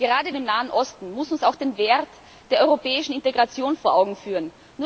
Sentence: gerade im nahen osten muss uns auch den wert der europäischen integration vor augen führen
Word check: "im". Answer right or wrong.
right